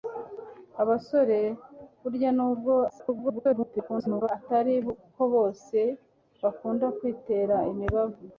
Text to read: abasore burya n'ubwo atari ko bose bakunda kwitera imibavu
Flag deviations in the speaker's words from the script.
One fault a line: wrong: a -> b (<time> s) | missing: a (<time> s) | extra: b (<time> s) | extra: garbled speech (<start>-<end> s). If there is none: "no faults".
extra: garbled speech (2.9-4.3 s)